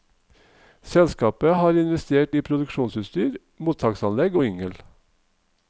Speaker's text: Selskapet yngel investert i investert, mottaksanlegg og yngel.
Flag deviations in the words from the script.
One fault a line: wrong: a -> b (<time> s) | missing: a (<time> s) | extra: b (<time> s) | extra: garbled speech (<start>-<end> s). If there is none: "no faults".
wrong: yngel -> har (1.5 s)
wrong: investert -> produksjonsutstyr (2.5 s)